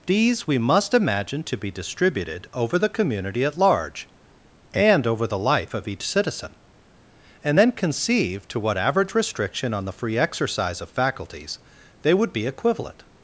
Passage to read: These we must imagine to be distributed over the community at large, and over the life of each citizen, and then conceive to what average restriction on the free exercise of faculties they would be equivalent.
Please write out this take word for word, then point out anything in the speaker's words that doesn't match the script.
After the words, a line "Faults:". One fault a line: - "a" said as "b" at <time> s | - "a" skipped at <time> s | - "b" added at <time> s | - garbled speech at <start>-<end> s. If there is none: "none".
These we must imagine to be distributed over the community at large, and over the life of each citizen, and then conceive to what average restriction on the free exercise of faculties they would be equivalent.
Faults:
none